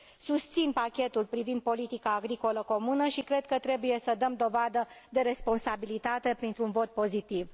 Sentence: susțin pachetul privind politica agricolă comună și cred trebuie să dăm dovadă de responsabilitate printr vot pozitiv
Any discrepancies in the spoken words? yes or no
yes